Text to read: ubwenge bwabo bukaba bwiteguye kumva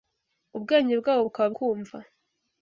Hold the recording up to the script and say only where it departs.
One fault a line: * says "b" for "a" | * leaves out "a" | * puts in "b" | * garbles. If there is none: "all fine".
* leaves out "bwiteguye"